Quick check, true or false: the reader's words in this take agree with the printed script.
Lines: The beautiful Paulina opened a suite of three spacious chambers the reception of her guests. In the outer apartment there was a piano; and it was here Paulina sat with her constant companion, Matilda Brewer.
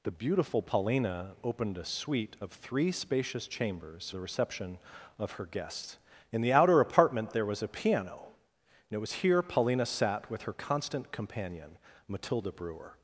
true